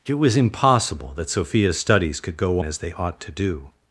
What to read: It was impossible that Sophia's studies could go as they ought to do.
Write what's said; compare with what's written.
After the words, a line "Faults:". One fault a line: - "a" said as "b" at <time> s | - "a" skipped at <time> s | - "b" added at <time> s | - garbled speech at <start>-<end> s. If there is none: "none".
It was impossible that Sophia's studies could go as they ought to do.
Faults:
none